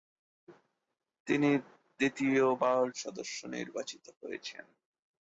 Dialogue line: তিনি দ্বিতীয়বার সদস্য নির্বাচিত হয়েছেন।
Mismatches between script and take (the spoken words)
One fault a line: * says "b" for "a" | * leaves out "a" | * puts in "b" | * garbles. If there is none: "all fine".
all fine